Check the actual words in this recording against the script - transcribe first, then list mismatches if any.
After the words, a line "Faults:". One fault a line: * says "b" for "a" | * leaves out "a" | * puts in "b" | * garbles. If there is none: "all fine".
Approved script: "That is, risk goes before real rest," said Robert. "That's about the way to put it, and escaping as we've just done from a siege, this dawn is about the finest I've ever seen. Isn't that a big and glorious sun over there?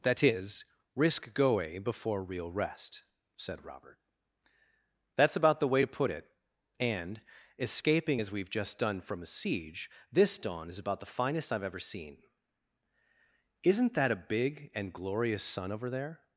"That is, risk goe before real rest," said Robert. "That's about the way to put it, and escaping as we've just done from a siege, this dawn is about the finest I've ever seen. Isn't that a big and glorious sun over there?
Faults:
* says "goe" for "goes"